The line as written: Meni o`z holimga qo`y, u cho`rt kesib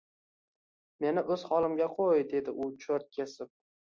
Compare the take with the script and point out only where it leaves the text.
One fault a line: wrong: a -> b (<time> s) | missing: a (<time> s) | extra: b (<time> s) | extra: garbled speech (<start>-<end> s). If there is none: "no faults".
extra: dedi (2.3 s)